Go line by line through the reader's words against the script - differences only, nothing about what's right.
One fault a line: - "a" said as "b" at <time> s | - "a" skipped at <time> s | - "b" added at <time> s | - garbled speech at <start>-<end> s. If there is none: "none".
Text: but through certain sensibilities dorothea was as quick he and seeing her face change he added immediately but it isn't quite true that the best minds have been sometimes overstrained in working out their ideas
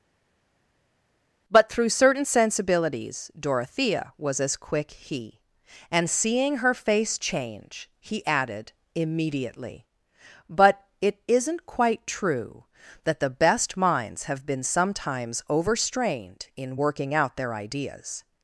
none